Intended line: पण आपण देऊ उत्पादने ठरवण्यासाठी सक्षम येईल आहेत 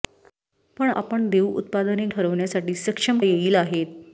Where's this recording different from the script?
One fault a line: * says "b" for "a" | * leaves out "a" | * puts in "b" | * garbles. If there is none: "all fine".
all fine